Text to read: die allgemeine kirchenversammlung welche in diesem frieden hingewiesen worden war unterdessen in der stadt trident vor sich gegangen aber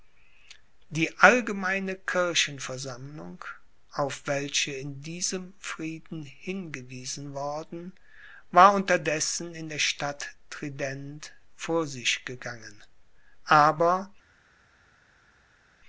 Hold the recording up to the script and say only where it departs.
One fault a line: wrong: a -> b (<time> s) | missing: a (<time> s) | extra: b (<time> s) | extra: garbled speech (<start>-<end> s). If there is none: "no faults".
extra: auf (3.9 s)